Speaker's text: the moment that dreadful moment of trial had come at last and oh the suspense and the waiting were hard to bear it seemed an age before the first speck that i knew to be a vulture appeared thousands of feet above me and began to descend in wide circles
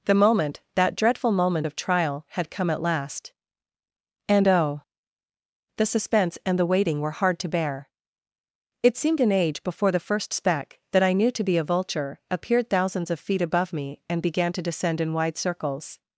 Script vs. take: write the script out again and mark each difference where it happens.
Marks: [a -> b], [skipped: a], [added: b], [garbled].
the moment that dreadful moment of trial had come at last and oh the suspense and the waiting were hard to bear it seemed an age before the first speck that i knew to be a vulture appeared thousands of feet above me and began to descend in wide circles